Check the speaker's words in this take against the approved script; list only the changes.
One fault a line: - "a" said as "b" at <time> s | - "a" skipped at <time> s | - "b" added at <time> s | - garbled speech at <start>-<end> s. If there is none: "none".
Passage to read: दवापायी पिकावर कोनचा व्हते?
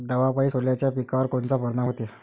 - "सोल्याच्या" added at 0.4 s
- "परिनाम" added at 1.6 s